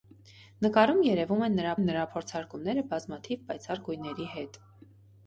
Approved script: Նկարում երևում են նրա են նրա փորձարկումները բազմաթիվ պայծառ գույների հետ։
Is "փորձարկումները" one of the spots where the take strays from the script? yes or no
no